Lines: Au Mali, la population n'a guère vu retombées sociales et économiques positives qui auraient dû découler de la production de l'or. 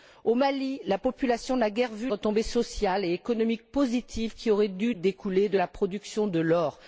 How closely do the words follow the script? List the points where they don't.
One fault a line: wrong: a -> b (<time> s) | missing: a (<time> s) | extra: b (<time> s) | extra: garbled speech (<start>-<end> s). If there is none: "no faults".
no faults